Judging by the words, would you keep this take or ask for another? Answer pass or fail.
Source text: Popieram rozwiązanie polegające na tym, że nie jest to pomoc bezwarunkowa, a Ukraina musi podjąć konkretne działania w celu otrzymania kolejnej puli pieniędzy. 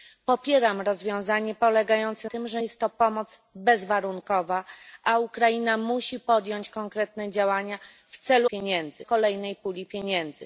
fail